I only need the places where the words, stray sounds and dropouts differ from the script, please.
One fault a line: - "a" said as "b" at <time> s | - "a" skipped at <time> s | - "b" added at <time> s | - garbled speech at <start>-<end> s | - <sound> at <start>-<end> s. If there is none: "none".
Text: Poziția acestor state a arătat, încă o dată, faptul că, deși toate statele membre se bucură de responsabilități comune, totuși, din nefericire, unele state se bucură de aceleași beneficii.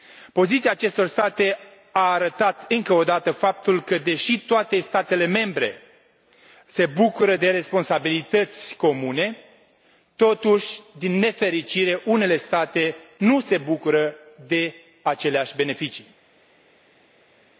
- "nu" added at 13.2 s